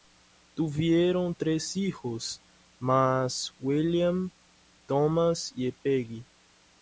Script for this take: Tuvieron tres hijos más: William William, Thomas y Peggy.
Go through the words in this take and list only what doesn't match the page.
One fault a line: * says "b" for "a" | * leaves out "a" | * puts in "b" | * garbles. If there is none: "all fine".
* leaves out "William"